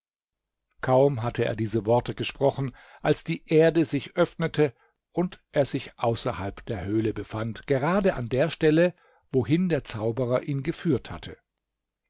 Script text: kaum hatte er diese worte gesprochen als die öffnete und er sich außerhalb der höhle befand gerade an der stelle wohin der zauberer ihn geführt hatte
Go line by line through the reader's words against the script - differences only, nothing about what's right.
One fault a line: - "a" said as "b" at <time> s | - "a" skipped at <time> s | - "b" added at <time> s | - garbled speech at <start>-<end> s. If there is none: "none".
- "erde sich" added at 3.5 s